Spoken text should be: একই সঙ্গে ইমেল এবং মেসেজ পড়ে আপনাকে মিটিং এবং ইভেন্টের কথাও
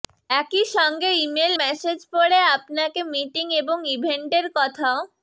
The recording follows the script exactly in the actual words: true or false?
false